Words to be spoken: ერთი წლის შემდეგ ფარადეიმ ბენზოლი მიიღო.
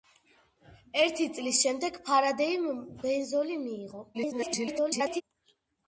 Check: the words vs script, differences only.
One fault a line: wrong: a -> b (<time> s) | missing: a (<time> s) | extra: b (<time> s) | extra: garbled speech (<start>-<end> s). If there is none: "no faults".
extra: garbled speech (4.1-5.2 s)